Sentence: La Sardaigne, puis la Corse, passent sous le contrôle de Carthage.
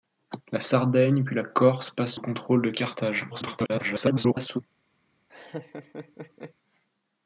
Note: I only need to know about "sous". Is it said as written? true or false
false